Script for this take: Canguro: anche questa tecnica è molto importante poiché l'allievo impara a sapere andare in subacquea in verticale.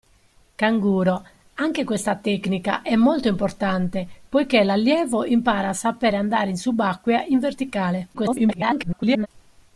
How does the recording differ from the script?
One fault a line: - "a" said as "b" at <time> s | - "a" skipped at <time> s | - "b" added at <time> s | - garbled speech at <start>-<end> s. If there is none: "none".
- garbled speech at 8.1-9.3 s